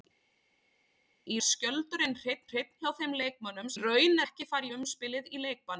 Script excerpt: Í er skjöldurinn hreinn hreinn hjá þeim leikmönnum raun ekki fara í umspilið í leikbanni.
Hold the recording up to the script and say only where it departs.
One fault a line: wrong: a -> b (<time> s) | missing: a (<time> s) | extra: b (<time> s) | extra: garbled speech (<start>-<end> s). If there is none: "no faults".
no faults